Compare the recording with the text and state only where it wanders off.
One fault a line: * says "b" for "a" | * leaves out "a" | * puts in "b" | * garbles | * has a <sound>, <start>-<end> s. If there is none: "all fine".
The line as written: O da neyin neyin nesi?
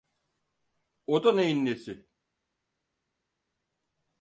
* leaves out "neyin"